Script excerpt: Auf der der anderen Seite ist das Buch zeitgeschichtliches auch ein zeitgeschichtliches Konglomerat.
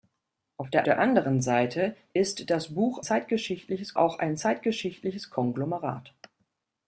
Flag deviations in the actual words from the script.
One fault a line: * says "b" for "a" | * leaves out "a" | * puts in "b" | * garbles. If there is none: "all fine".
all fine